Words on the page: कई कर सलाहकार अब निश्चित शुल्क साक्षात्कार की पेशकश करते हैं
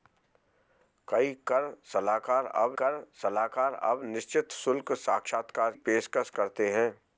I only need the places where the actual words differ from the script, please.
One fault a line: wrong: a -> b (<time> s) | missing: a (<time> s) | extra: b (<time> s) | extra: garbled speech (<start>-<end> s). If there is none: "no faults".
extra: कर सलाहकार अब (2.8 s)
missing: की (5.7 s)